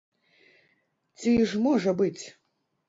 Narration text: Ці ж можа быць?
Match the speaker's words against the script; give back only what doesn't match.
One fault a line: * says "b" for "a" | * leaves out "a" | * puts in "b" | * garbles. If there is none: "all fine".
all fine